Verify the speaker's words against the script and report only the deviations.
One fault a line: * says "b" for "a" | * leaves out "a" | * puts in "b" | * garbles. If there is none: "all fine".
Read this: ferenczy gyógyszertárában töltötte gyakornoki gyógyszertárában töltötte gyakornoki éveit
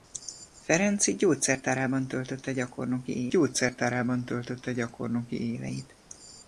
all fine